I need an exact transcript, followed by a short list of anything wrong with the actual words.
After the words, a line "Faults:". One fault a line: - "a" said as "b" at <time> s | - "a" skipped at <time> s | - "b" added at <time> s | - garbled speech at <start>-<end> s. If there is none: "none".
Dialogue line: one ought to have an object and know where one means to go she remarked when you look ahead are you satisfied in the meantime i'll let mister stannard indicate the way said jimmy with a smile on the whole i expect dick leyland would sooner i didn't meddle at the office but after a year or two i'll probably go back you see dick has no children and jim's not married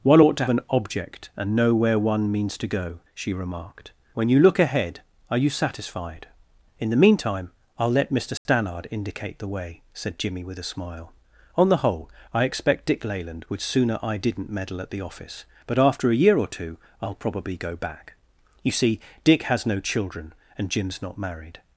one ought to an object and know where one means to go she remarked when you look ahead are you satisfied in the meantime i'll let mister stannard indicate the way said jimmy with a smile on the whole i expect dick leyland would sooner i didn't meddle at the office but after a year or two i'll probably go back you see dick has no children and jim's not married
Faults:
- "have" skipped at 0.4 s